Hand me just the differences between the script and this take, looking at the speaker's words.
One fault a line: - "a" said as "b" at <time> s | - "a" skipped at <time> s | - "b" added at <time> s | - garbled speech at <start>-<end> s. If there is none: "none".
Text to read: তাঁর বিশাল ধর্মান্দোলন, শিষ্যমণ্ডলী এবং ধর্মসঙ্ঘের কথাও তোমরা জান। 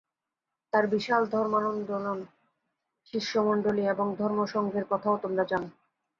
none